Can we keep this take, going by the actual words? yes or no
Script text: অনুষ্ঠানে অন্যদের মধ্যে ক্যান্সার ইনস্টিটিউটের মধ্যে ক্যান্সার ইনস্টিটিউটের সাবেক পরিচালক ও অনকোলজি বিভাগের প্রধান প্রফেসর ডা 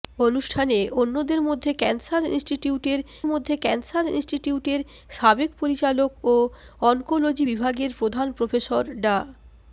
yes